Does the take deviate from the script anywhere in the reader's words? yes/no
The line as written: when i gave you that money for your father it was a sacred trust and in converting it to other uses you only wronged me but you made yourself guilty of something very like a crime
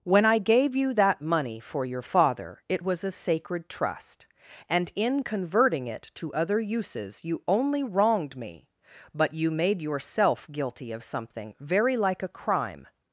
no